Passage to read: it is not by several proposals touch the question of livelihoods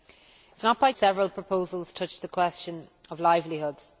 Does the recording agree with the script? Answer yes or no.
yes